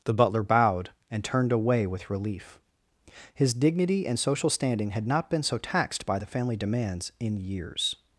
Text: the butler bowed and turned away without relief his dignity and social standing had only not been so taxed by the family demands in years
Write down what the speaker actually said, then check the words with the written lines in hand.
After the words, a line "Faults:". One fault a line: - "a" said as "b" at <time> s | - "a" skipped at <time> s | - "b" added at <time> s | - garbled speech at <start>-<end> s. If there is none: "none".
the butler bowed and turned away with relief his dignity and social standing had not been so taxed by the family demands in years
Faults:
- "without" said as "with" at 1.9 s
- "only" skipped at 5.0 s